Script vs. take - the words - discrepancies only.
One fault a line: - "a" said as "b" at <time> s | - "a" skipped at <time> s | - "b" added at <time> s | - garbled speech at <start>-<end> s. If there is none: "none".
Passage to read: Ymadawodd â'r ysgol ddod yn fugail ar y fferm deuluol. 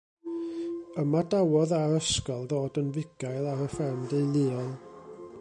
none